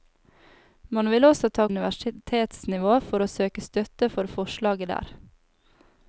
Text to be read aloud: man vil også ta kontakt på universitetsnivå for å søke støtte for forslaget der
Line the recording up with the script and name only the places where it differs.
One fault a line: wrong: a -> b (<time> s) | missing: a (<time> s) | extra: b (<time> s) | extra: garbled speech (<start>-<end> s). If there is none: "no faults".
missing: kontakt på (1.7 s)